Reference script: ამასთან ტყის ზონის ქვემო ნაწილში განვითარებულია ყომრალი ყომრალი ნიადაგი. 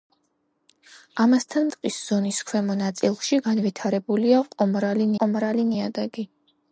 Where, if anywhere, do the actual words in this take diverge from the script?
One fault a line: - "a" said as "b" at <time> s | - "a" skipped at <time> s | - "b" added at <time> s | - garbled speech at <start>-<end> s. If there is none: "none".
none